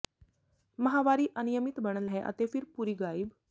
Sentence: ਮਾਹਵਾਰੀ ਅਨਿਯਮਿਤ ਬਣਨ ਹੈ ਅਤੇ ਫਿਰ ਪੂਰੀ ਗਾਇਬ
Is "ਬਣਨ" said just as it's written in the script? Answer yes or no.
yes